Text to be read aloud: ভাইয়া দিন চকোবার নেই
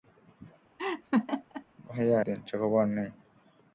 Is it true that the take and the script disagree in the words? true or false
false